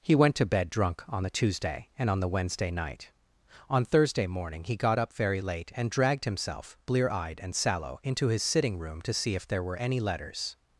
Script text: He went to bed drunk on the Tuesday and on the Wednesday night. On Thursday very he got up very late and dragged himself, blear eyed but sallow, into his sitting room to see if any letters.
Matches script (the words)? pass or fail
fail